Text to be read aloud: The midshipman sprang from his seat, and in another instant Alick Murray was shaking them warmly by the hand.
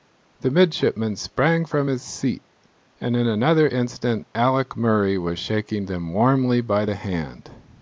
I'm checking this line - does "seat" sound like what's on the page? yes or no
yes